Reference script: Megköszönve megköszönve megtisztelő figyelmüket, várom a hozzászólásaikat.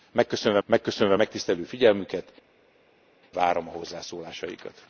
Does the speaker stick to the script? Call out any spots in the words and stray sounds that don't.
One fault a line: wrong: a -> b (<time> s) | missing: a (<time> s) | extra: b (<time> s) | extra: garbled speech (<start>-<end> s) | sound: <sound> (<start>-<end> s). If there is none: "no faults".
no faults